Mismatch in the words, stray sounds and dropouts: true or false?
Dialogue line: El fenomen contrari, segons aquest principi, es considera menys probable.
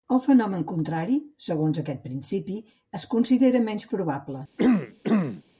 true